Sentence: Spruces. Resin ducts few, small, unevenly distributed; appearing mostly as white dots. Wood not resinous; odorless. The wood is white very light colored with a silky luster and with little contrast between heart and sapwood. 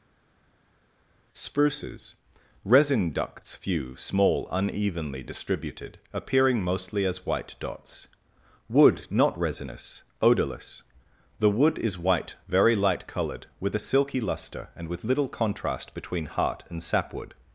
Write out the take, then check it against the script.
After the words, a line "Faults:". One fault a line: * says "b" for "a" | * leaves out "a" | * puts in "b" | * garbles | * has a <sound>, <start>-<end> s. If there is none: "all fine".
Spruces. Resin ducts few, small, unevenly distributed; appearing mostly as white dots. Wood not resinous; odorless. The wood is white very light colored with a silky luster and with little contrast between heart and sapwood.
Faults:
all fine